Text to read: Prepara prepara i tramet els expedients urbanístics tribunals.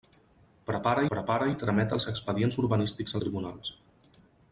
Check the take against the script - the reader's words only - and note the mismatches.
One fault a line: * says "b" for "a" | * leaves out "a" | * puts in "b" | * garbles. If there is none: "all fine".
all fine